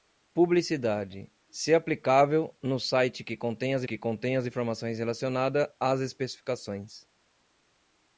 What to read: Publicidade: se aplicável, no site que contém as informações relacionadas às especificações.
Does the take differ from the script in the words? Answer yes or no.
yes